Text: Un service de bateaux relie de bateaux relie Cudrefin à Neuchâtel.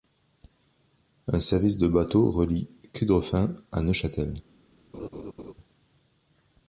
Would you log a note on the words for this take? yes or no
yes